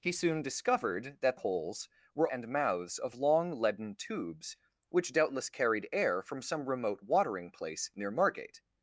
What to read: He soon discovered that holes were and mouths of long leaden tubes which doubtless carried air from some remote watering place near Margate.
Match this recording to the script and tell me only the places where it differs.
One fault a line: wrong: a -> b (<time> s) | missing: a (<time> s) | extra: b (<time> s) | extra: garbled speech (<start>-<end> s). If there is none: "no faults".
no faults